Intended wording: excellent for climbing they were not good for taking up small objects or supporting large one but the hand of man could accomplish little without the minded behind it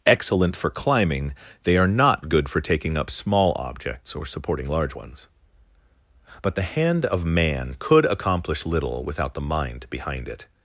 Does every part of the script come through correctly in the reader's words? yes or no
no